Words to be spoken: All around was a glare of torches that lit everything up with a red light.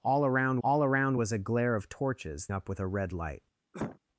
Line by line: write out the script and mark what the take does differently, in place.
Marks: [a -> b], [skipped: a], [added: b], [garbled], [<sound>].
All around [added: all around] was a glare of torches [skipped: that lit everything] up with a red light. [cough]